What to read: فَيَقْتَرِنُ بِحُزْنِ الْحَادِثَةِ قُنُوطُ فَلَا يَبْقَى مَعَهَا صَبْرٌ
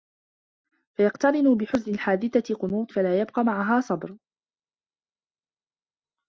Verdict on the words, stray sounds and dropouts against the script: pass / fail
pass